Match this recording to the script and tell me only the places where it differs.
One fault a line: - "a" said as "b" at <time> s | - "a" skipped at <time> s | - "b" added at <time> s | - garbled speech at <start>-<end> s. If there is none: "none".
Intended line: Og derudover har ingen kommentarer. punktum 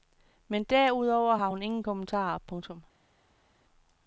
- "Og" said as "Men" at 0.5 s
- "hun" added at 1.5 s